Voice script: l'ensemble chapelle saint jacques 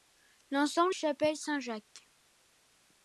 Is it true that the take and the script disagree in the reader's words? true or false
false